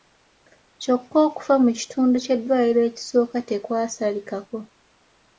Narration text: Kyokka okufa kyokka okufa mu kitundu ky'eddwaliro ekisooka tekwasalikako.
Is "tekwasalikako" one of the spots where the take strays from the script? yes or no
no